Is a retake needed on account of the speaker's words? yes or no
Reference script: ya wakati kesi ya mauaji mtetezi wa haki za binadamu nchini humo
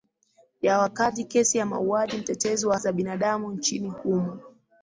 yes